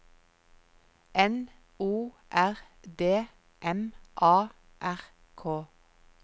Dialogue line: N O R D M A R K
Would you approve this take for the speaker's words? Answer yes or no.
yes